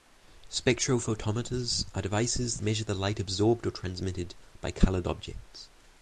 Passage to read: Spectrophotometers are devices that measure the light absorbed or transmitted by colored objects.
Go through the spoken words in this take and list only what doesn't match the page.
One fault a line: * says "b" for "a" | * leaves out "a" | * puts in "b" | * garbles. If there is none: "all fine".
* leaves out "that"